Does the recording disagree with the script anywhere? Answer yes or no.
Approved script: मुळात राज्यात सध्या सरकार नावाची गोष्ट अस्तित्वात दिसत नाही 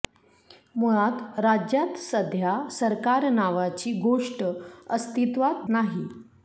yes